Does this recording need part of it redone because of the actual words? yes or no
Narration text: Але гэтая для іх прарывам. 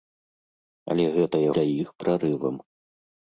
no